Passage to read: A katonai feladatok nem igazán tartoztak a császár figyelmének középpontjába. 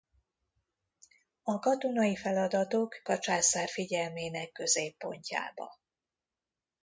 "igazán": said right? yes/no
no